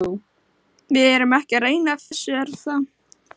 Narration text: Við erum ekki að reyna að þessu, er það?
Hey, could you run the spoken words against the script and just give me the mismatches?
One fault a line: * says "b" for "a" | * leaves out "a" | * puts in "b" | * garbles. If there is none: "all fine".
all fine